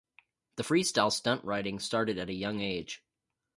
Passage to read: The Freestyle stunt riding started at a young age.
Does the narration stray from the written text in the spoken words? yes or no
no